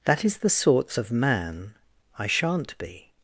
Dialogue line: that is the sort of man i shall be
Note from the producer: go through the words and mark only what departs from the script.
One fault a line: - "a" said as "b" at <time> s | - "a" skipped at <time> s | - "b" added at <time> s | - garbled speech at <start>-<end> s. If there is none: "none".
- "sort" said as "sorts" at 0.5 s
- "shall" said as "shan't" at 2.3 s